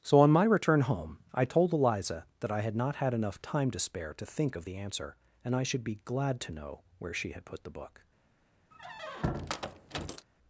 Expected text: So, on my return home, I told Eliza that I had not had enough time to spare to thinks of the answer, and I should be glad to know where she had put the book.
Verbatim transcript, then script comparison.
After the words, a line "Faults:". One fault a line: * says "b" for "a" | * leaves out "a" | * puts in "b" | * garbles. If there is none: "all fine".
So, on my return home, I told Eliza that I had not had enough time to spare to think of the answer, and I should be glad to know where she had put the book.
Faults:
* says "think" for "thinks"